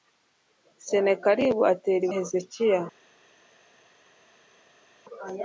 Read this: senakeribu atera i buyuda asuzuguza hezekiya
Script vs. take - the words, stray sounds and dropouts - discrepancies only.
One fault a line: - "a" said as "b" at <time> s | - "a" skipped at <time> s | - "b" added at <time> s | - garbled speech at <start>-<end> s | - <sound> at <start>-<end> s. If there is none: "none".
- "buyuda asuzuguza" skipped at 2.1 s